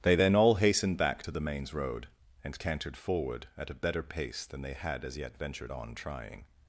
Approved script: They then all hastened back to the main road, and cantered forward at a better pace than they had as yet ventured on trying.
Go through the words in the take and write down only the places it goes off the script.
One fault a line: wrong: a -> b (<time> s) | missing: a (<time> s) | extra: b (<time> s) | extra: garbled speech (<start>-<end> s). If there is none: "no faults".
wrong: main -> mains (1.4 s)